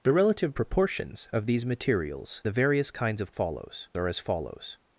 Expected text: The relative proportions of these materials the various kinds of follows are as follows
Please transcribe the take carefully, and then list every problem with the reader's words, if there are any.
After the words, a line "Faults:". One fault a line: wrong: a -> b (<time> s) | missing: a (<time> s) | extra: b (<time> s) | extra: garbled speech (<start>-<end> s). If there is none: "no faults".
The relative proportions of these materials the various kinds of follows are as follows
Faults:
no faults